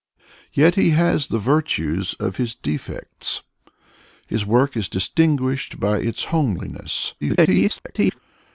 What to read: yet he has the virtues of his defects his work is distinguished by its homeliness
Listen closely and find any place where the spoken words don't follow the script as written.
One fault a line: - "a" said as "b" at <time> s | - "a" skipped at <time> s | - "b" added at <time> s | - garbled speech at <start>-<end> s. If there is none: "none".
- garbled speech at 7.2-8.2 s